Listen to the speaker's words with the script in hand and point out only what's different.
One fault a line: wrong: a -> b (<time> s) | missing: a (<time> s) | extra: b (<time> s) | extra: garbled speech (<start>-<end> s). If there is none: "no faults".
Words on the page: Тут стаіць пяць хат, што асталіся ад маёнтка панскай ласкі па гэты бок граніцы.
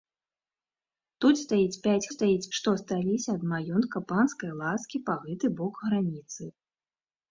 wrong: хат -> стаіць (2.1 s)